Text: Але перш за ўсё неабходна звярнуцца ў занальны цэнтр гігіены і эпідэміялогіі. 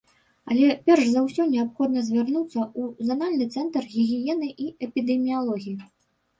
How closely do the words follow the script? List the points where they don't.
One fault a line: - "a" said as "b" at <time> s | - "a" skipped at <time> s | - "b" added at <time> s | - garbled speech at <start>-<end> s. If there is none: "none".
none